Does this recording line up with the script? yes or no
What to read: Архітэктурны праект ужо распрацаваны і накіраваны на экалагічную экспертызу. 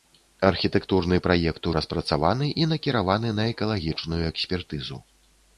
no